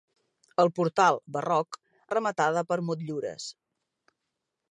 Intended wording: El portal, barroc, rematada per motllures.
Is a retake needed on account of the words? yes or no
no